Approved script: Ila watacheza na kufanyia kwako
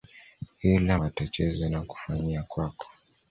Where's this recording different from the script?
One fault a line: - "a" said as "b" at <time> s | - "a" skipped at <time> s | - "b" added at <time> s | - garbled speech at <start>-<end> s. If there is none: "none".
none